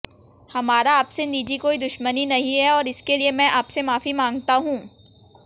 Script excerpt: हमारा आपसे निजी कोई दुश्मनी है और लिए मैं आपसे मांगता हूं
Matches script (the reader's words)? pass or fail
fail